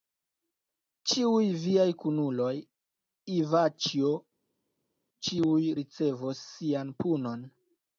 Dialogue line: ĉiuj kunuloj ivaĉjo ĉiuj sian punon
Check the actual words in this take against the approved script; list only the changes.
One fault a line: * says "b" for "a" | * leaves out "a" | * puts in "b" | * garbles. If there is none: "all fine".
* puts in "viaj"
* puts in "ricevos"